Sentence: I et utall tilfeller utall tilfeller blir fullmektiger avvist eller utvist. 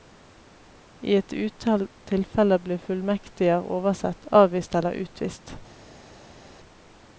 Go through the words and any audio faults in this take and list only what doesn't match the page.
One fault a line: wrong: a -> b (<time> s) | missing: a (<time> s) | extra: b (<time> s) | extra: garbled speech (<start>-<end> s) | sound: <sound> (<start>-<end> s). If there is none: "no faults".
missing: utall tilfeller (2.6 s)
extra: oversett (3.8 s)